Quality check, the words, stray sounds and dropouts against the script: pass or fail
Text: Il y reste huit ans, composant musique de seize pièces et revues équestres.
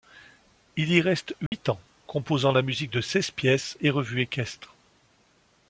fail